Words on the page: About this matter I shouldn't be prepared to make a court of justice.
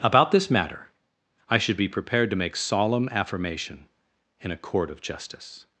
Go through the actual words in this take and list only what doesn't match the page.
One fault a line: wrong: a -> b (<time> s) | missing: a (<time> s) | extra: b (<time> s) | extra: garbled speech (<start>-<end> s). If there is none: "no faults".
wrong: shouldn't -> should (1.6 s)
extra: solemn affirmation in (2.5 s)